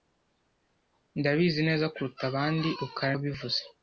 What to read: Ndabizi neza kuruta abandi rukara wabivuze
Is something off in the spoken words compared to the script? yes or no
no